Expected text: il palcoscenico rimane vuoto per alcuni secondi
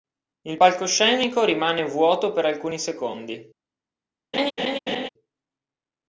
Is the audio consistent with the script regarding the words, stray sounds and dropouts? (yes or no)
no